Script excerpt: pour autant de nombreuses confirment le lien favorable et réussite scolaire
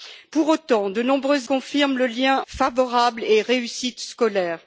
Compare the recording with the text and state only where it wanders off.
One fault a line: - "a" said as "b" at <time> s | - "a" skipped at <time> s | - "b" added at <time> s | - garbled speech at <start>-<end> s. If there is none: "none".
none